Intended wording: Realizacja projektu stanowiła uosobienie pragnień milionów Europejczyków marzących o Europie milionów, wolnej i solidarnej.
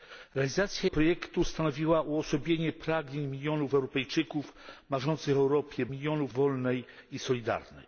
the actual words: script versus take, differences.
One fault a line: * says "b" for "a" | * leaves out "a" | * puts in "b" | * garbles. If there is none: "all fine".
all fine